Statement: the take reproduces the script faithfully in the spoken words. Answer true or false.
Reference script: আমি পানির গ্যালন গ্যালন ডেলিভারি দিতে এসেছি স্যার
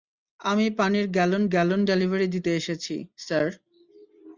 true